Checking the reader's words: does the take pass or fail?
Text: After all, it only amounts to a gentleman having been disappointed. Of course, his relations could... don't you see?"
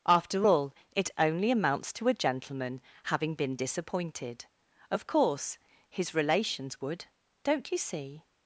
fail